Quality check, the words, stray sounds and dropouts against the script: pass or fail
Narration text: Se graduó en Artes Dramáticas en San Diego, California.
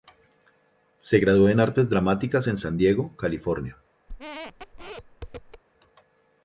fail